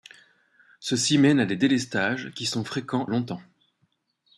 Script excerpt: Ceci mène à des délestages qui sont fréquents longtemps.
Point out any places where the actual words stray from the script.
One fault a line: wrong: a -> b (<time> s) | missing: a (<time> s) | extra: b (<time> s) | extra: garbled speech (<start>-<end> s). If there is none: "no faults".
no faults